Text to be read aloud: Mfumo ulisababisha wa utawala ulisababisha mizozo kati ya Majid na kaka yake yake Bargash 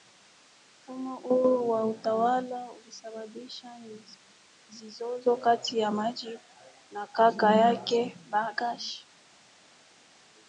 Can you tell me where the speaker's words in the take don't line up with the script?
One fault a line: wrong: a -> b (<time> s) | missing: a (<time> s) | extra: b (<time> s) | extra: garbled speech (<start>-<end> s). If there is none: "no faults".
wrong: ulisababisha -> huu (1.1 s)
missing: yake (8.2 s)